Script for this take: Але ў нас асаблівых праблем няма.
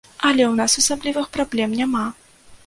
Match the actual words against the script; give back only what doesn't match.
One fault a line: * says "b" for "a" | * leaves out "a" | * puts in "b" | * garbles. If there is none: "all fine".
all fine